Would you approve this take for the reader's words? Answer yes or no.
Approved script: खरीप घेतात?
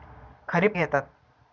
yes